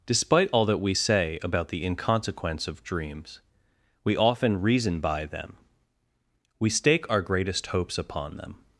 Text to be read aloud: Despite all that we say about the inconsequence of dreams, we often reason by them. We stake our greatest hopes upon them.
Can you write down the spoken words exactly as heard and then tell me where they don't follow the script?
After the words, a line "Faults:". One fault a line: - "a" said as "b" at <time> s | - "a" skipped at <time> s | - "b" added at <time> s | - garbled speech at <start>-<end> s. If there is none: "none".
Despite all that we say about the inconsequence of dreams, we often reason by them. We stake our greatest hopes upon them.
Faults:
none